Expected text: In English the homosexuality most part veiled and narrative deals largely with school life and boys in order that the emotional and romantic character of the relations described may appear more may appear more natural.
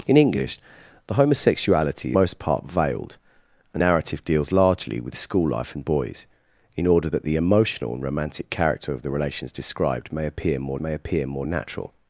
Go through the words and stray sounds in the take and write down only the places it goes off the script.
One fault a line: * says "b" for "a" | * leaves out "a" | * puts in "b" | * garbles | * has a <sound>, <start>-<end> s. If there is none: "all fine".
all fine